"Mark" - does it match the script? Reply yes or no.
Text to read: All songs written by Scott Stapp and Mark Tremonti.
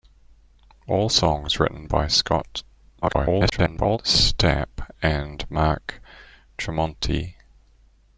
yes